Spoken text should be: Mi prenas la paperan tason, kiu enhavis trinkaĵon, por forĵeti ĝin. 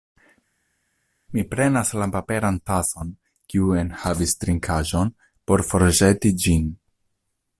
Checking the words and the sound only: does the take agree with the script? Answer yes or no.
yes